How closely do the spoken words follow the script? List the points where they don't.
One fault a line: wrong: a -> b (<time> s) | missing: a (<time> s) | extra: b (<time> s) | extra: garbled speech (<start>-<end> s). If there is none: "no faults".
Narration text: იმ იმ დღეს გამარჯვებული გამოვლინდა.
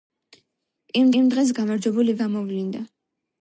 no faults